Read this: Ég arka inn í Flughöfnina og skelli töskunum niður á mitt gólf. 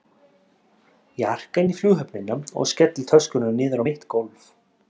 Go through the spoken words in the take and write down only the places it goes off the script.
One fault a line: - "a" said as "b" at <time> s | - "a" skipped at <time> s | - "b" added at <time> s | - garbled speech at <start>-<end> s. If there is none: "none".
none